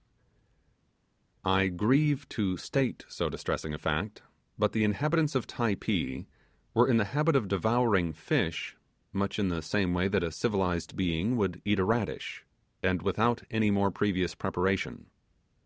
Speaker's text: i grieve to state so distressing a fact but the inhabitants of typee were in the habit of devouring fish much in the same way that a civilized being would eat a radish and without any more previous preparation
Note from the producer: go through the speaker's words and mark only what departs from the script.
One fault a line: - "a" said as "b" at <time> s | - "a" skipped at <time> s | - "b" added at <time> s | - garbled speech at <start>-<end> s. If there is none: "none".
none